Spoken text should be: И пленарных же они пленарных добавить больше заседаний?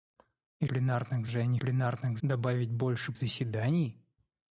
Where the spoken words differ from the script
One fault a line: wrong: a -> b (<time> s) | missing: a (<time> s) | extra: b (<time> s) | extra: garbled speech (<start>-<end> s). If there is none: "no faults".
no faults